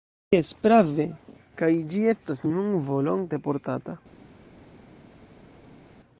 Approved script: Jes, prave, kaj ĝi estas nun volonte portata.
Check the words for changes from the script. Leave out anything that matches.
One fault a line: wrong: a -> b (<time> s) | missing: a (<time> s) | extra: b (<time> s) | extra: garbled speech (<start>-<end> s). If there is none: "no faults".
no faults